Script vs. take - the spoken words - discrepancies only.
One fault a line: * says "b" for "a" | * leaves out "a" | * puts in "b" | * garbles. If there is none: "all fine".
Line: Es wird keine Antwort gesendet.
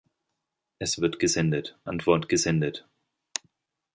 * says "gesendet" for "keine"